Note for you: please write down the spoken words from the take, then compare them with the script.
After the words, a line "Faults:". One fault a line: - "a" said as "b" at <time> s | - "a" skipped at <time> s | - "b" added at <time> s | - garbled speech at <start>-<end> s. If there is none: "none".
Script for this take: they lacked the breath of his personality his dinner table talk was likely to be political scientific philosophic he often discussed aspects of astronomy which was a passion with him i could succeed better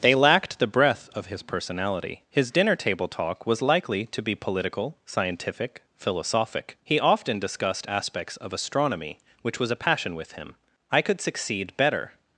they lacked the breath of his personality his dinner table talk was likely to be political scientific philosophic he often discussed aspects of astronomy which was a passion with him i could succeed better
Faults:
none